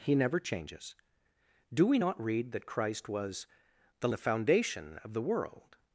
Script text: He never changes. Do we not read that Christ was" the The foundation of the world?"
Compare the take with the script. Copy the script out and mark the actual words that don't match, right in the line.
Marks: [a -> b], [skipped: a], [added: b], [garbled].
He never changes. Do we not read that Christ was" the The foundation of the world?"